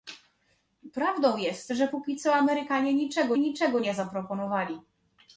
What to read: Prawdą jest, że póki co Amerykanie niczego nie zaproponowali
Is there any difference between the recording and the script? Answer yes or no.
yes